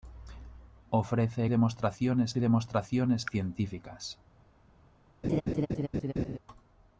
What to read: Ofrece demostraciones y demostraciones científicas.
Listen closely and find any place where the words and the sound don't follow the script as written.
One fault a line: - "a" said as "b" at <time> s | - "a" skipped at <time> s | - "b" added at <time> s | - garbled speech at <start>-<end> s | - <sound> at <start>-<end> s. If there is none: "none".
- laugh at 5.2-6.4 s